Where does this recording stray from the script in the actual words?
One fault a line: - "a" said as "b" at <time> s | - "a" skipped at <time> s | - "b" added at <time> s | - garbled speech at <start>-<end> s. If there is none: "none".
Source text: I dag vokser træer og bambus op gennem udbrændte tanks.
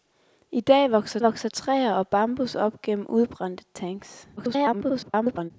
- "vokser" added at 1.2 s
- garbled speech at 4.4-5.5 s